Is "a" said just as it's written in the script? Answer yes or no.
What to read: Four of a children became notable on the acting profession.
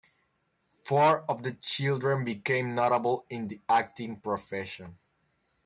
no